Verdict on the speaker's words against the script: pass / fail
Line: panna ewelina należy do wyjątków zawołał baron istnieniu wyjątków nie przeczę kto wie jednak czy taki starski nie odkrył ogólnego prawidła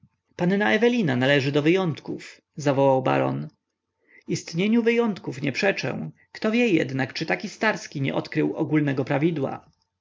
pass